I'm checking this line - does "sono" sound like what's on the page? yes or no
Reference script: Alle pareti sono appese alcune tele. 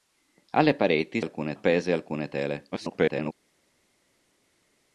no